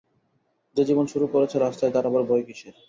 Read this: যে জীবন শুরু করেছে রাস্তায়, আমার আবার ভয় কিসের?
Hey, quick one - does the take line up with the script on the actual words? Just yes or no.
no